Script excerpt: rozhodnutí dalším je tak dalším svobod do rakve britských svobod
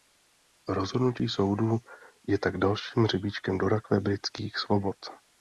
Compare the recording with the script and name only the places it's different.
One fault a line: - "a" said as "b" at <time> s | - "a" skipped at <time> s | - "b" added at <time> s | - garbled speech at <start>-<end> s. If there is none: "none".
- "dalším" said as "soudu" at 1.3 s
- "svobod" said as "hřebíčkem" at 3.0 s